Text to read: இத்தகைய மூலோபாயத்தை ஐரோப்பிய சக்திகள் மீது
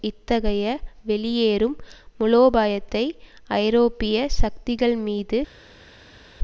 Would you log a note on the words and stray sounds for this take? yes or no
yes